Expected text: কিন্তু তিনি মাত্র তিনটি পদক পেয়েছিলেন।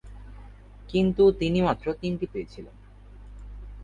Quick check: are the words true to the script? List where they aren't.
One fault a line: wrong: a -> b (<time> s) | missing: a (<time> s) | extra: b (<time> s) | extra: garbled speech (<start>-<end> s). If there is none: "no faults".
missing: পদক (2.2 s)